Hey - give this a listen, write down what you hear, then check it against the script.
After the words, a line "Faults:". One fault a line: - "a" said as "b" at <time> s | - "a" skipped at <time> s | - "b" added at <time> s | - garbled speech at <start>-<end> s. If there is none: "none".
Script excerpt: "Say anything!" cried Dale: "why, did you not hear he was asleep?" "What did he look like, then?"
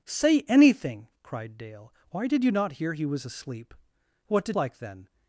"Say anything!" cried Dale: "why, did you not hear he was asleep?" "What did like, then?"
Faults:
- "he look" skipped at 4.5 s